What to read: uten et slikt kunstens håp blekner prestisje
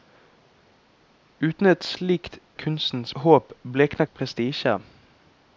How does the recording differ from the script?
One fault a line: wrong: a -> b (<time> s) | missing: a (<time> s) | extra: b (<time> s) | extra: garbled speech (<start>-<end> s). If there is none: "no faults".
no faults